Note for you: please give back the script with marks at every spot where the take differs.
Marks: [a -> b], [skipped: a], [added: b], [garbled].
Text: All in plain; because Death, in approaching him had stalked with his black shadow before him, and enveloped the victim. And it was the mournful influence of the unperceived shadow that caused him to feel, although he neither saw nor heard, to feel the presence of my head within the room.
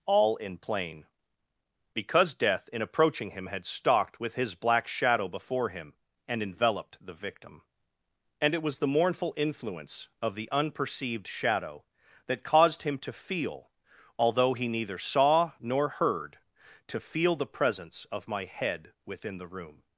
All in plain; because Death, in approaching him had stalked with his black shadow before him, and enveloped the victim. And it was the mournful influence of the unperceived shadow that caused him to feel, although he neither saw nor heard, to feel the presence of my head within the room.